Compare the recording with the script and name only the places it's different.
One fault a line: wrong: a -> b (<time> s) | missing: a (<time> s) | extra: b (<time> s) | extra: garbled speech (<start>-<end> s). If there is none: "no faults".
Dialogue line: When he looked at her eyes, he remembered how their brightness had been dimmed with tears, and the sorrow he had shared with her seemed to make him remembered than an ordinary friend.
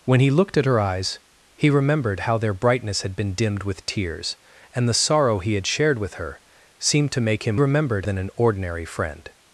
no faults